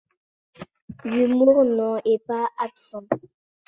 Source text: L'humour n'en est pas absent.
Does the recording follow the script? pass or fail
pass